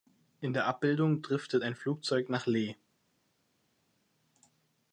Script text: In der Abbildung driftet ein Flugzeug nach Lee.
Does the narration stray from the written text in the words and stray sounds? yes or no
no